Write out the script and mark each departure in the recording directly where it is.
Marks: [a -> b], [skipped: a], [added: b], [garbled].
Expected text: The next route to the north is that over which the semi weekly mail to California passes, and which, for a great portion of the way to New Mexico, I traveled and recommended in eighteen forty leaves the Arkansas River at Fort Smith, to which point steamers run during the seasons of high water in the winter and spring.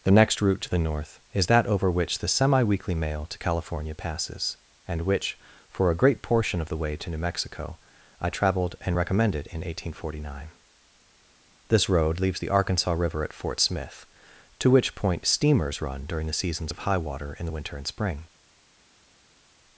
The next route to the north is that over which the semi weekly mail to California passes, and which, for a great portion of the way to New Mexico, I traveled and recommended in eighteen forty [added: nine This road] leaves the Arkansas River at Fort Smith, to which point steamers run during the seasons of high water in the winter and spring.